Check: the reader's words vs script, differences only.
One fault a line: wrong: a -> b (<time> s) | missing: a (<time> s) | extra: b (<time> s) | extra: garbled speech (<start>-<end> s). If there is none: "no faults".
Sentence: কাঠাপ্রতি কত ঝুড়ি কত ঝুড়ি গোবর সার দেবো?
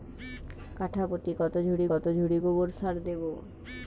no faults